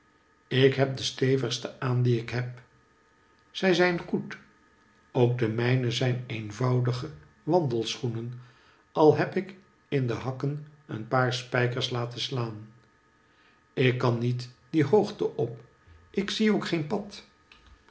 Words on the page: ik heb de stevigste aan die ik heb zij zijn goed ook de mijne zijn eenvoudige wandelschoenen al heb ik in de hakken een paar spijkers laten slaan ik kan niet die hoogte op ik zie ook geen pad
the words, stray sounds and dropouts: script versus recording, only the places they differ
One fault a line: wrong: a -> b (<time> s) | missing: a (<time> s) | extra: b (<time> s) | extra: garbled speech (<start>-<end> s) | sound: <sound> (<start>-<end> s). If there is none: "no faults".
no faults